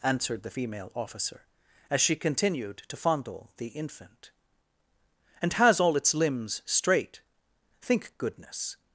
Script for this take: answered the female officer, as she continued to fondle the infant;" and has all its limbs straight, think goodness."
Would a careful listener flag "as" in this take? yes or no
no